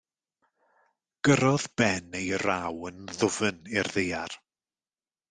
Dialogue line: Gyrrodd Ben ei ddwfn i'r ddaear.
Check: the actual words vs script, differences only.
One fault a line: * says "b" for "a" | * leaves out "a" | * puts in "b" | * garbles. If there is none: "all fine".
* puts in "raw yn"